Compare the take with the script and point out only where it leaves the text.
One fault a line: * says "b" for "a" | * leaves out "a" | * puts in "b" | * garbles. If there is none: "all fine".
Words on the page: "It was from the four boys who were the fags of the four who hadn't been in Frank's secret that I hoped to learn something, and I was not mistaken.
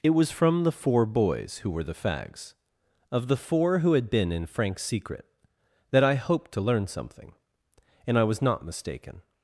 * says "had" for "hadn't"